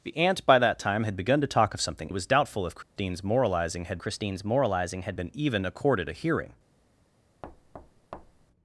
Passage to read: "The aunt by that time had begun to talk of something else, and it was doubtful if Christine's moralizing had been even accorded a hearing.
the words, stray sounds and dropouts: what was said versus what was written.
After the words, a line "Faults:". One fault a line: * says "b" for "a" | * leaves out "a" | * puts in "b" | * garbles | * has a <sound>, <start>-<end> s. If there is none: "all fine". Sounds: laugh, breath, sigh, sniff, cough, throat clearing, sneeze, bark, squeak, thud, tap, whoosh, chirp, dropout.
"The aunt by that time had begun to talk of something it was doubtful if Christine's moralizing had Christine's moralizing had been even accorded a hearing.
Faults:
* leaves out "else and"
* has a dropout, 2.8-3.0 s
* puts in "Christine's moralizing had"
* has a thud, 7.4-8.5 s